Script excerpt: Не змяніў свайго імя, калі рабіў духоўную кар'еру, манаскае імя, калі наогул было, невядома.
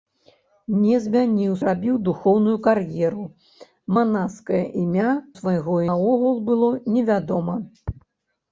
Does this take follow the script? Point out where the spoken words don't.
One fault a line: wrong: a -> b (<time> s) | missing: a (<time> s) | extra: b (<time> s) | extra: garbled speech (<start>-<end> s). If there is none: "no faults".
missing: свайго імя калі (1.5 s)
wrong: калі -> свайго (5.4 s)